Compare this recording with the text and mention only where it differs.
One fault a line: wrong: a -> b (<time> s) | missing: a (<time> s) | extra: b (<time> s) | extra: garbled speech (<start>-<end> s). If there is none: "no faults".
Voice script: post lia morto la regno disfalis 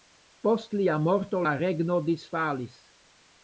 no faults